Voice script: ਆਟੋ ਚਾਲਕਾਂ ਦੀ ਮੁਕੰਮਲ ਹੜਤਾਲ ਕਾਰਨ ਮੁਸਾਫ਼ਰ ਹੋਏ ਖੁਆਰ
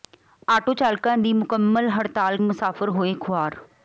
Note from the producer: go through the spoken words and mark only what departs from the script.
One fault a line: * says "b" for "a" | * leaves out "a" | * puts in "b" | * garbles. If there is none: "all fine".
* leaves out "ਕਾਰਨ"